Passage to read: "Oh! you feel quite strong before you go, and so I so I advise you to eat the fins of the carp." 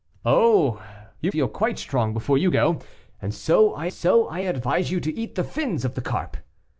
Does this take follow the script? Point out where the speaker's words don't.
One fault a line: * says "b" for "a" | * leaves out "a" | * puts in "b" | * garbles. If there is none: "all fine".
all fine